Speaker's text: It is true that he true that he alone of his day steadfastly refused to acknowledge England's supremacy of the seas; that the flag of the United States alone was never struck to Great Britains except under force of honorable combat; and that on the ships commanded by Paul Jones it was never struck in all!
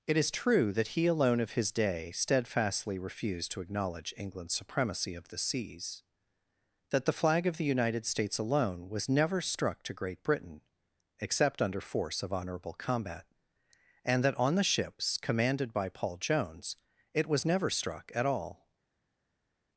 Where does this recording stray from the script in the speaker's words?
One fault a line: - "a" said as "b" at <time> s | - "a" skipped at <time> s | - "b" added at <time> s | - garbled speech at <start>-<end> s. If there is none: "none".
- "true that he" skipped at 1.1 s
- "Britains" said as "Britain" at 10.2 s
- "in" said as "at" at 18.1 s